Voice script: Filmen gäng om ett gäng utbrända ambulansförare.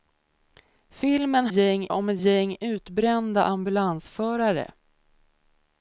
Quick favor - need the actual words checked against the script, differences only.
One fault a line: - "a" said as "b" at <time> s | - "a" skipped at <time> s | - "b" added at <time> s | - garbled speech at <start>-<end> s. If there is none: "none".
none